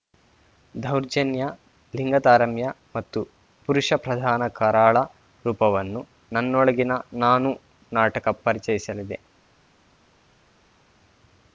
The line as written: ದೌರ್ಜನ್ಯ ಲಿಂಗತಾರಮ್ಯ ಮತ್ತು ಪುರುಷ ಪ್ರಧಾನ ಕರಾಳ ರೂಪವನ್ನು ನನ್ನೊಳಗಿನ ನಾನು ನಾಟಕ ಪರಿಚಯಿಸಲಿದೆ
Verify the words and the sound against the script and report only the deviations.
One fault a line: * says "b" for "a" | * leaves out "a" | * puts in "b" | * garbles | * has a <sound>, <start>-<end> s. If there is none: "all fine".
all fine